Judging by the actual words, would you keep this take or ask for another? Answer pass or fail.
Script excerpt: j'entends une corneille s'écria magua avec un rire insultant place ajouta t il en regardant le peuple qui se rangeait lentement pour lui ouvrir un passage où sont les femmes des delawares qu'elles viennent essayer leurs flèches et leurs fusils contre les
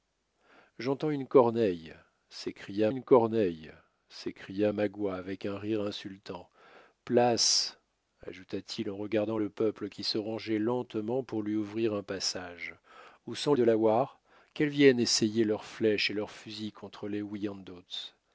fail